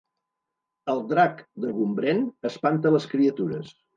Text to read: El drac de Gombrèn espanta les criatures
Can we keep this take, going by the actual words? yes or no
yes